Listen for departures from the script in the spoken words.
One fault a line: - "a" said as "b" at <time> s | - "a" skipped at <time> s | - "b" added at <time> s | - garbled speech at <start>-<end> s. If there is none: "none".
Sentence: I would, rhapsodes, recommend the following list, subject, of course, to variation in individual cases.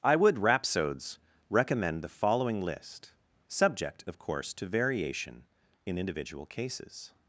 none